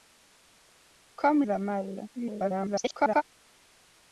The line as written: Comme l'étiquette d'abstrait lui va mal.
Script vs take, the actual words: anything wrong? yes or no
yes